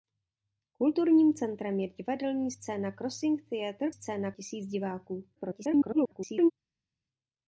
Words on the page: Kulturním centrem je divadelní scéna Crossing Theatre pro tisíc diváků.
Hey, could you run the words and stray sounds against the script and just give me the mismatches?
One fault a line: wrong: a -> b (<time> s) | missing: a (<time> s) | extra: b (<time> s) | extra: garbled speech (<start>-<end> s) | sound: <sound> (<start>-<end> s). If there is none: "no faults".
wrong: pro -> scéna (3.9 s)
extra: garbled speech (5.4-6.5 s)